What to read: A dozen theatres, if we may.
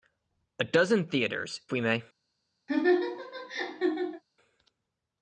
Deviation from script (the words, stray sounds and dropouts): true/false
true